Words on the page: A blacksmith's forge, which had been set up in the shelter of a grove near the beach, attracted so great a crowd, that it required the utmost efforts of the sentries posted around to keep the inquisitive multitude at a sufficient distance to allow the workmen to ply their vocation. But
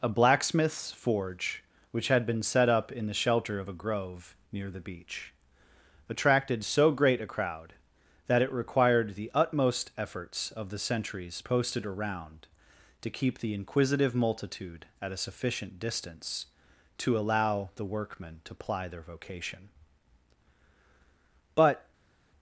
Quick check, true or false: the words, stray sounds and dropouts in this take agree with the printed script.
true